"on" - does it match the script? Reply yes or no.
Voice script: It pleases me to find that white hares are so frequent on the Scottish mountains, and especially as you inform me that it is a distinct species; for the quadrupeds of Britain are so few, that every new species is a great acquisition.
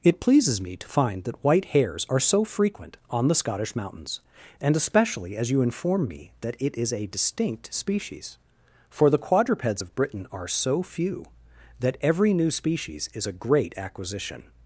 yes